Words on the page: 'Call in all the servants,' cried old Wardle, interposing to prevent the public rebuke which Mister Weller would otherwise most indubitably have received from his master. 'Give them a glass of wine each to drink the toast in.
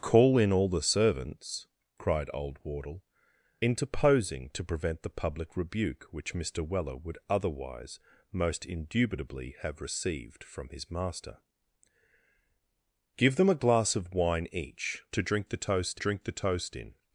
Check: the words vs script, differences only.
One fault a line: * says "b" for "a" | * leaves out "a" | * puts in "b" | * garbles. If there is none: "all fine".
* puts in "drink the toast"